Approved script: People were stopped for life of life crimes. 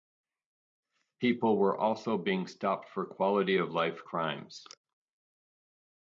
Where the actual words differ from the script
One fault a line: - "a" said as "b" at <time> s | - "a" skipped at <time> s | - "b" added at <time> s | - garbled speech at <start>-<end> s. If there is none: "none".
- "also being" added at 1.8 s
- "life" said as "quality" at 3.0 s